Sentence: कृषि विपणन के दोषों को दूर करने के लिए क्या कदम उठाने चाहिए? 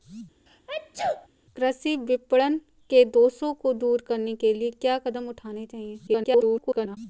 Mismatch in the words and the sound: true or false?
true